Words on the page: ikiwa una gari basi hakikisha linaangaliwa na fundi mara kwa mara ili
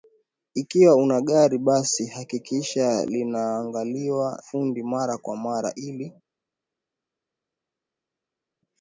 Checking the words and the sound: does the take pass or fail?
fail